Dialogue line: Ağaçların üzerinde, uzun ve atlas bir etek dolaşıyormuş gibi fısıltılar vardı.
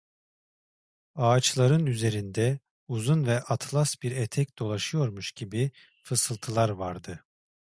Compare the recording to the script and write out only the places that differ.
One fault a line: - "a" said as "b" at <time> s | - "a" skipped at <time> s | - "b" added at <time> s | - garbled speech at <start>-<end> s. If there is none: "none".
none